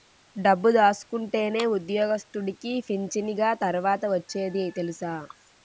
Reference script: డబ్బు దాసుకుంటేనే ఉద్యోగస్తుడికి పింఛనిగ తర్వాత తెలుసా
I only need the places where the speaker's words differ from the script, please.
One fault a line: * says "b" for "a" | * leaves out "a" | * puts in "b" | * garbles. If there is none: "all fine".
* puts in "ఒచ్చేది"